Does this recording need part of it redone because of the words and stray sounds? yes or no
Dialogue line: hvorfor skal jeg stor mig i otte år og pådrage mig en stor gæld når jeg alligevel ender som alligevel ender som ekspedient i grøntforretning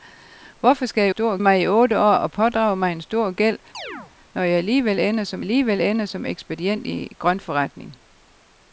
yes